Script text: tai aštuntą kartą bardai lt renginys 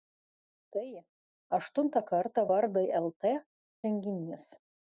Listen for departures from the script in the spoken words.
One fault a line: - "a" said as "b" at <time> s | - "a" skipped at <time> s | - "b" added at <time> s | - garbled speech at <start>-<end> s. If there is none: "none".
none